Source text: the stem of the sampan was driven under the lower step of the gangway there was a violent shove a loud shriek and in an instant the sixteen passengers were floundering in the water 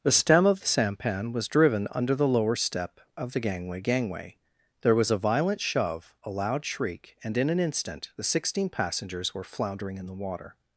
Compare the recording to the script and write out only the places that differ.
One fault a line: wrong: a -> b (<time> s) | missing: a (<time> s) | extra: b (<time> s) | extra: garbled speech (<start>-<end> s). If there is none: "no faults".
extra: gangway (3.8 s)